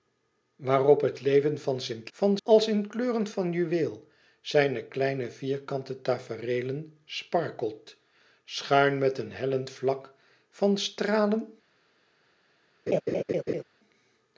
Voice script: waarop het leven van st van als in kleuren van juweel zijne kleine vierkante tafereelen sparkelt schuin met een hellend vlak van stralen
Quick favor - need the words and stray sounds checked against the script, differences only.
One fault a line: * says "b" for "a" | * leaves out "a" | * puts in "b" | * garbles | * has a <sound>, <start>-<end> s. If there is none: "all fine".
* has a laugh, 12.9-13.6 s